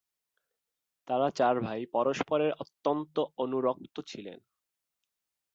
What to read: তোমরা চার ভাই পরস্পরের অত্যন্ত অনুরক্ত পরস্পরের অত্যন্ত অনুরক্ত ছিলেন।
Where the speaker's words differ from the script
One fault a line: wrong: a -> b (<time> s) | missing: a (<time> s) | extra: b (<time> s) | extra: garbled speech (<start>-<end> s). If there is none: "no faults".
wrong: তোমরা -> তারা (1.1 s)
missing: পরস্পরের অত্যন্ত অনুরক্ত (3.9 s)